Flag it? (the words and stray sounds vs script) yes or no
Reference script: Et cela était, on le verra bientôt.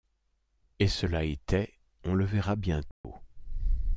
yes